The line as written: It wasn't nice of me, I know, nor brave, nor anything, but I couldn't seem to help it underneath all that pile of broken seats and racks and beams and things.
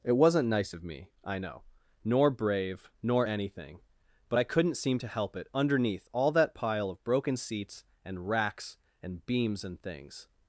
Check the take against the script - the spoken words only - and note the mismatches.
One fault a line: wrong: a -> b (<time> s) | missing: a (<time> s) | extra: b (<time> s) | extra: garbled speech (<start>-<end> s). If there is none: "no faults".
no faults